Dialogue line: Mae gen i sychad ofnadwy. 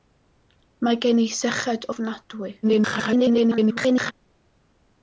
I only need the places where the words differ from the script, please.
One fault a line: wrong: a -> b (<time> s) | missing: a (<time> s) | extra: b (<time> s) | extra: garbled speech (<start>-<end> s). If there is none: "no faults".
extra: garbled speech (2.6-4.1 s)